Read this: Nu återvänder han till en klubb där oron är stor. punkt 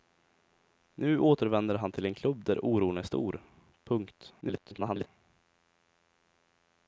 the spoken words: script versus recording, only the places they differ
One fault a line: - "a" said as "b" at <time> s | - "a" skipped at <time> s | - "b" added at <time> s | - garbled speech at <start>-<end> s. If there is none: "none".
- garbled speech at 4.4-5.1 s